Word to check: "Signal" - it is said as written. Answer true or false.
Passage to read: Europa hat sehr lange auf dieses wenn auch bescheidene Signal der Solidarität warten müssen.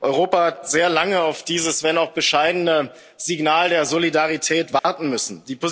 true